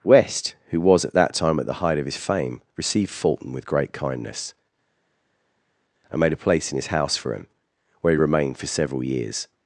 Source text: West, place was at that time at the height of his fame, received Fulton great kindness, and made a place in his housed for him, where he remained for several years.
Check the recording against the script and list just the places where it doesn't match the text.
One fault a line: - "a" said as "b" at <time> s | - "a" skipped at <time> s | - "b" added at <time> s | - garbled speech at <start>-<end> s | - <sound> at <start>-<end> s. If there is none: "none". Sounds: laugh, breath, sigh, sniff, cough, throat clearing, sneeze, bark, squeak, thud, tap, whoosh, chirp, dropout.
- "place" said as "who" at 0.7 s
- "with" added at 3.5 s
- "housed" said as "house" at 6.9 s